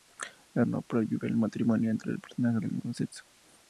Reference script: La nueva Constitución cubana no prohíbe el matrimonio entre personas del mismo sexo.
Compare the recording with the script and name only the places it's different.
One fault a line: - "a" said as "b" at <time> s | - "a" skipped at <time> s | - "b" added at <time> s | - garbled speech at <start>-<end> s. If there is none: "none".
- "nueva Constitución cubana" skipped at 0.7 s